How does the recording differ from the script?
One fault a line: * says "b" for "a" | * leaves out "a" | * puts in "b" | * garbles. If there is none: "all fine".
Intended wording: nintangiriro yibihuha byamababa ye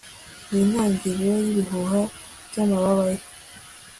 all fine